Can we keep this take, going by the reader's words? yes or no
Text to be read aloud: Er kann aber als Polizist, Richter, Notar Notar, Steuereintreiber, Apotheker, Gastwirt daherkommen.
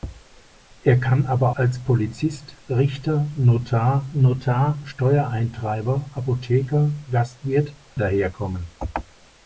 yes